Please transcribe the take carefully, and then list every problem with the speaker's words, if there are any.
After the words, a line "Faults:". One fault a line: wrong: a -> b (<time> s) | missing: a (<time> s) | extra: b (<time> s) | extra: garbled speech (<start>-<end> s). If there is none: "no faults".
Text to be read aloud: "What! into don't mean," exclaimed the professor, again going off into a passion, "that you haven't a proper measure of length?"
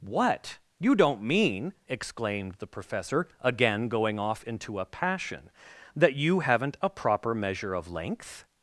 "What! you don't mean," exclaimed the professor, again going off into a passion, "that you haven't a proper measure of length?"
Faults:
wrong: into -> you (0.8 s)